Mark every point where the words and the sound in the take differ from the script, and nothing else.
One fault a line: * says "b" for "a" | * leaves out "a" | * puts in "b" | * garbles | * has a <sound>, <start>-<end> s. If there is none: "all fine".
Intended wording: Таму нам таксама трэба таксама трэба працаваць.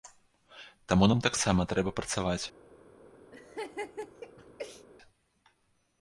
* leaves out "таксама трэба"
* has a laugh, 3.3-4.9 s